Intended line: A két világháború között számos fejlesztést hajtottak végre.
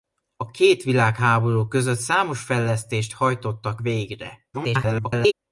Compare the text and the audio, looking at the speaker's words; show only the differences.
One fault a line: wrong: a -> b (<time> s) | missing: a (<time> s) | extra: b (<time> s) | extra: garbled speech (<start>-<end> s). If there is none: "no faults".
extra: garbled speech (4.5-5.3 s)